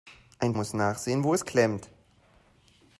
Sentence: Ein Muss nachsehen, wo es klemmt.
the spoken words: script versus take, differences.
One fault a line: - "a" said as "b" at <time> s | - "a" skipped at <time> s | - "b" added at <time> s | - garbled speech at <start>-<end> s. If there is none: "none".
none